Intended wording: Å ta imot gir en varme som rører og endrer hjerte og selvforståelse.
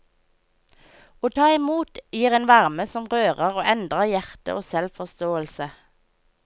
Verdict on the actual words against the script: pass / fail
pass